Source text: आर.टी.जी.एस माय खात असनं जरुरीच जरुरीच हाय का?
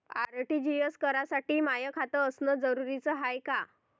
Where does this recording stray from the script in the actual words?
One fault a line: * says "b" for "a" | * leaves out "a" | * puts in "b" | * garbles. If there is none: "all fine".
* puts in "करासाठी"
* leaves out "जरुरीच"